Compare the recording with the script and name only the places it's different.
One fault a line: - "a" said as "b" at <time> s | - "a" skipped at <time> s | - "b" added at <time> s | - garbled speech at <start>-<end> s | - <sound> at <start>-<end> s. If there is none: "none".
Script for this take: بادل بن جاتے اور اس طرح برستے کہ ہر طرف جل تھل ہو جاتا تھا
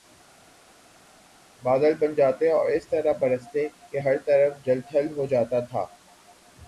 none